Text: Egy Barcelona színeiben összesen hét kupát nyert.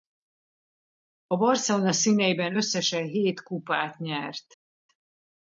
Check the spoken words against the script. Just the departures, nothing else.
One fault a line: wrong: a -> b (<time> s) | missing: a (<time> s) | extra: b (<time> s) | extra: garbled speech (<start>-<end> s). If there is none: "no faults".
wrong: Egy -> A (1.3 s)